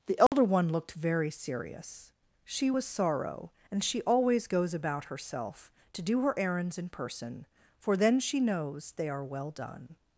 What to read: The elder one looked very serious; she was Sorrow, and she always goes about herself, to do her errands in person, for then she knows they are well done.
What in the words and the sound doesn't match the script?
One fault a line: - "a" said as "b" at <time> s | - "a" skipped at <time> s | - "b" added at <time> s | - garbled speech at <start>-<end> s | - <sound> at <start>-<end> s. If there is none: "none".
- dropout at 0.3-0.3 s